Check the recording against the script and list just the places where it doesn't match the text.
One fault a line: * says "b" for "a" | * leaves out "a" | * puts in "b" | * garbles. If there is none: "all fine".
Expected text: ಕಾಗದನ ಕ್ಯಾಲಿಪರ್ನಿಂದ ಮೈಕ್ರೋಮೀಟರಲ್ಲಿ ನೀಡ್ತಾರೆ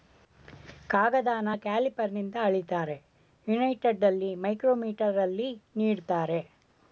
* puts in "ಅಳಿತಾರೆ ಯುನೈಟೆಡಲ್ಲಿ"